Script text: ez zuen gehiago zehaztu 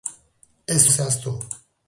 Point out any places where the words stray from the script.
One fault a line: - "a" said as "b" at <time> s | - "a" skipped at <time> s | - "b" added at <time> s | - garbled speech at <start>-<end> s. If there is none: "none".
- "zuen gehiago" skipped at 0.8 s